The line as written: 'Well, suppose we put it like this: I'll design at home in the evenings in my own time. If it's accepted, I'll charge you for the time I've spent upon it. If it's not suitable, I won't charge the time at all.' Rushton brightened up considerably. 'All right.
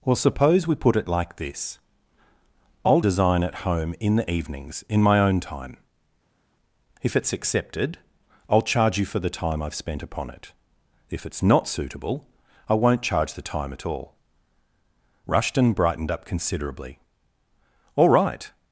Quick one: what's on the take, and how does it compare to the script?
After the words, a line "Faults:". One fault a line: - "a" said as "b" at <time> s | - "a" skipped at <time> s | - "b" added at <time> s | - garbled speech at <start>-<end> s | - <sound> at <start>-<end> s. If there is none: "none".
'Well, suppose we put it like this: I'll design at home in the evenings in my own time. If it's accepted, I'll charge you for the time I've spent upon it. If it's not suitable, I won't charge the time at all.' Rushton brightened up considerably. 'All right.
Faults:
none